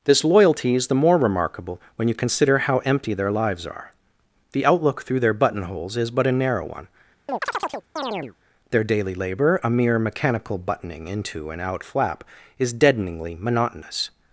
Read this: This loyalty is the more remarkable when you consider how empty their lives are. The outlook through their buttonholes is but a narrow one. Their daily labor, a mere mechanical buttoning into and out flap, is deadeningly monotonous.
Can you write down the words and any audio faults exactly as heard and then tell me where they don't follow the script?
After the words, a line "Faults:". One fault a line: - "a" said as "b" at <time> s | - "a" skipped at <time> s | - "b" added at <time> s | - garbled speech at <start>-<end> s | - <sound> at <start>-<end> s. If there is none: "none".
This loyalty is the more remarkable when you consider how empty their lives are. The outlook through their buttonholes is but a narrow one. Their daily labor, a mere mechanical buttoning into and out flap, is deadeningly monotonous.
Faults:
- chirp at 7.3-8.3 s